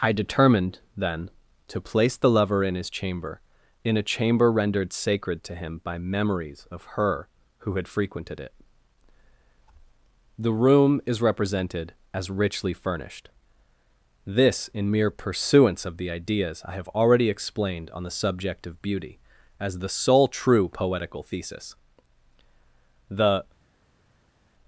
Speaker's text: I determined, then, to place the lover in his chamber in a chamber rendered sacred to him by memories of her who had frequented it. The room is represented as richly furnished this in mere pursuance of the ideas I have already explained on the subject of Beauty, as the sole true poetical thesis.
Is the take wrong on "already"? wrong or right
right